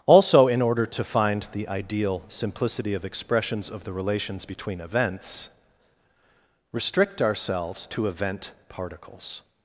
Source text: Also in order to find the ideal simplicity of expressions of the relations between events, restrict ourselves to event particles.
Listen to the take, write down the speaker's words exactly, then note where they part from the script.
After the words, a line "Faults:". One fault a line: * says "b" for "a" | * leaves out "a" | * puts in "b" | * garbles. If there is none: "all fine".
Also in order to find the ideal simplicity of expressions of the relations between events, restrict ourselves to event particles.
Faults:
all fine